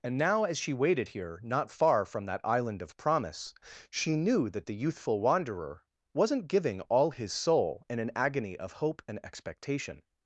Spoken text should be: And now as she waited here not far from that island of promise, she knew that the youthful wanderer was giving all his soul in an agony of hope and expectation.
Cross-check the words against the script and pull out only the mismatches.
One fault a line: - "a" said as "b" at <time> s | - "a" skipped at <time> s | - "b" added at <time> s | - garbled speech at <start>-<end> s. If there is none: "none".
- "was" said as "wasn't" at 6.1 s